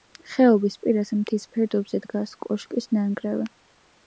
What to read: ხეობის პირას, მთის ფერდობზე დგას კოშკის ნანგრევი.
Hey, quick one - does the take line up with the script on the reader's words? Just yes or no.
yes